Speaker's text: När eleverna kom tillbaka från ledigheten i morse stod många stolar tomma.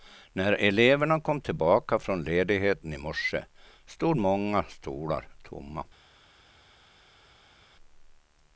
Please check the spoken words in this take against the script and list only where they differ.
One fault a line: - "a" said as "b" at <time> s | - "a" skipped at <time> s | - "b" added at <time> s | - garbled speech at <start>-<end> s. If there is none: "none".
none